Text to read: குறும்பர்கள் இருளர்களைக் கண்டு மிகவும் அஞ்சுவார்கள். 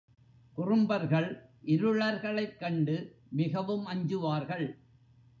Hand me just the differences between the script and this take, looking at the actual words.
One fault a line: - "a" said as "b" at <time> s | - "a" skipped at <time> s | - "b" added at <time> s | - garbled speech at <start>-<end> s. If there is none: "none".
none